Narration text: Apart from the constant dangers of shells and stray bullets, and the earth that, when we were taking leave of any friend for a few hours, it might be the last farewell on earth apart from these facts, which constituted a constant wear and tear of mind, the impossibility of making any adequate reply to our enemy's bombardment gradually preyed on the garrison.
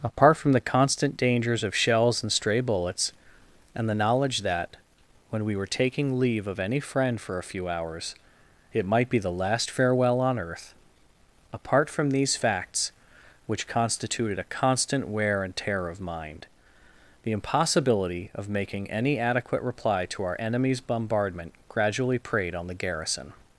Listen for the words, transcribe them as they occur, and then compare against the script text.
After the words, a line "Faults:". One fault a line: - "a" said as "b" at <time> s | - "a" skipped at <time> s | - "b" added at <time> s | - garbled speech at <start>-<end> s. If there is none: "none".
Apart from the constant dangers of shells and stray bullets, and the knowledge that, when we were taking leave of any friend for a few hours, it might be the last farewell on earth apart from these facts, which constituted a constant wear and tear of mind, the impossibility of making any adequate reply to our enemy's bombardment gradually preyed on the garrison.
Faults:
- "earth" said as "knowledge" at 3.9 s